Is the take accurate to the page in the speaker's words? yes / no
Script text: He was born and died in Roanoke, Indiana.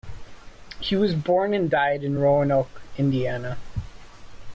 yes